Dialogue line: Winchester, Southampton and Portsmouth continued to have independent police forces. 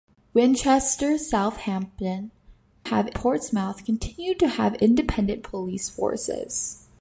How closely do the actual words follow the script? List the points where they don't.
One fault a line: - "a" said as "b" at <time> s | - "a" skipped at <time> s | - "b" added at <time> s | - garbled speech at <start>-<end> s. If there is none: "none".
- "and" said as "have" at 2.8 s